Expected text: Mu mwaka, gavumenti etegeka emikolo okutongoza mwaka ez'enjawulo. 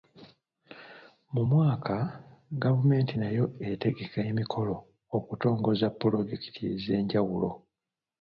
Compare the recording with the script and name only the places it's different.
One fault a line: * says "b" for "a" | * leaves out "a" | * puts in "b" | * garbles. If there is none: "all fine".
* puts in "nayo"
* says "pulojekiti" for "mwaka"